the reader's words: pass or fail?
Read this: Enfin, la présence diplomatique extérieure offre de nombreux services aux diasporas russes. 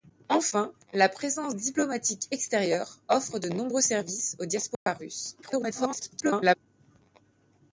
fail